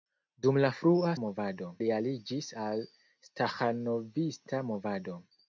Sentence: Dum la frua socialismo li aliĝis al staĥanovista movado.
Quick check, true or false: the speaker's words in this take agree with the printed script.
false